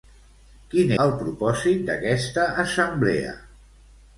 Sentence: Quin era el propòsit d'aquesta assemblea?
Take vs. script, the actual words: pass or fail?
fail